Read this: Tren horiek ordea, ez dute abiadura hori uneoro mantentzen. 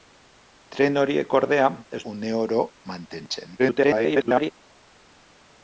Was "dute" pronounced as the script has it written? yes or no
no